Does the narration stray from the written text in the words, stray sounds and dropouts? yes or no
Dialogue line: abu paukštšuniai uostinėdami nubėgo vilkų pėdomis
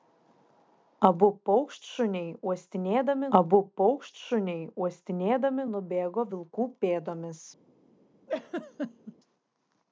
yes